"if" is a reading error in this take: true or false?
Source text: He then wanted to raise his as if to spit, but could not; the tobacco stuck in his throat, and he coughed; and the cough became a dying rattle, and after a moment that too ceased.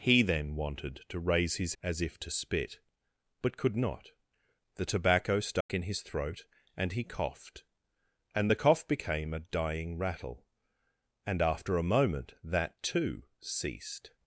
false